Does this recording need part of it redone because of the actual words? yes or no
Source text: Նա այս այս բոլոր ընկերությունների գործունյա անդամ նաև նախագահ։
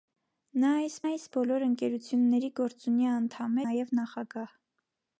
no